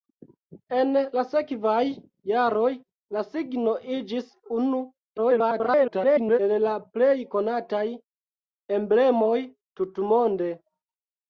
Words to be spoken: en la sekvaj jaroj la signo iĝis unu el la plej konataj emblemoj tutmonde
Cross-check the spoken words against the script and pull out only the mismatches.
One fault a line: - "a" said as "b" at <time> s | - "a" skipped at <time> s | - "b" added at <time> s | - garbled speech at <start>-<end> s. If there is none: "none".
- garbled speech at 5.2-6.4 s